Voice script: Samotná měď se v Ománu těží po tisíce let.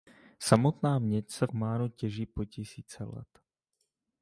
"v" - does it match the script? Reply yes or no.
no